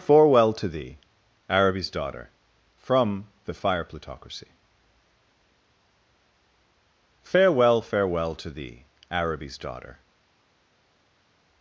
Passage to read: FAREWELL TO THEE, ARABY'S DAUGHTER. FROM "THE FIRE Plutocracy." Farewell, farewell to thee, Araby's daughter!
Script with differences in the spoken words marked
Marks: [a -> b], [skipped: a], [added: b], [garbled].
FAREWELL TO THEE, ARABY'S DAUGHTER. FROM "THE FIRE Plutocracy." Farewell, farewell to thee, Araby's daughter!